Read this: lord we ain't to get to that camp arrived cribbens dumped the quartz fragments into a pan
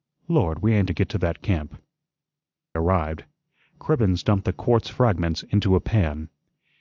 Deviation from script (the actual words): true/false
false